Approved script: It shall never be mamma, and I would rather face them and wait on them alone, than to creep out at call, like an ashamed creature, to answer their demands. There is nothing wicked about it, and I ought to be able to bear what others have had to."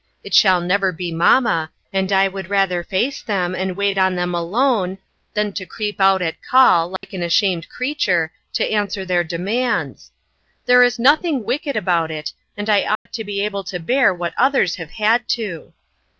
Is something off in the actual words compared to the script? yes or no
no